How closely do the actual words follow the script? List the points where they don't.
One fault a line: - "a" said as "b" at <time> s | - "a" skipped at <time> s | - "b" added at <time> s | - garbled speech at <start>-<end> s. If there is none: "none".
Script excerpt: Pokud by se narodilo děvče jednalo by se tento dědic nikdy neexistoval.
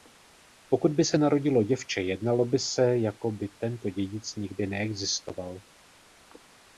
- "jako by" added at 3.0 s